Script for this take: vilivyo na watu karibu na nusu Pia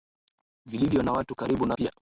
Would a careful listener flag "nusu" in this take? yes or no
yes